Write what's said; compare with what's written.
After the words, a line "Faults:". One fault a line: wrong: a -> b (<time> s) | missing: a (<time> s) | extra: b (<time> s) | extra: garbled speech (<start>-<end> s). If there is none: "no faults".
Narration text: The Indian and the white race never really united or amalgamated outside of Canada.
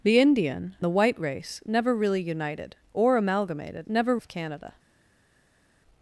The Indian the white race never really united or amalgamated never of Canada.
Faults:
missing: and (0.8 s)
wrong: outside -> never (3.9 s)